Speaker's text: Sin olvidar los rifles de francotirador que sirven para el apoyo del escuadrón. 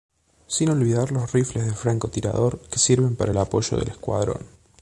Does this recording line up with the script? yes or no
yes